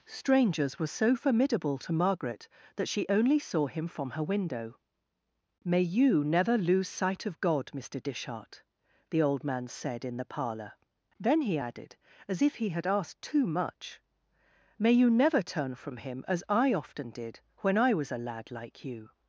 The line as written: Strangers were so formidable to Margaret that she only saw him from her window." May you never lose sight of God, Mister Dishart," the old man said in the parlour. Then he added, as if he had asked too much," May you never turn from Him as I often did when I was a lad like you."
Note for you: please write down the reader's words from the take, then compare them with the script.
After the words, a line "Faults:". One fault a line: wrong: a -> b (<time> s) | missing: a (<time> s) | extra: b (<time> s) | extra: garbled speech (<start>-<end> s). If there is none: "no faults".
Strangers were so formidable to Margaret that she only saw him from her window." May you never lose sight of God, Mister Dishart," the old man said in the parlour. Then he added, as if he had asked too much," May you never turn from Him as I often did when I was a lad like you."
Faults:
no faults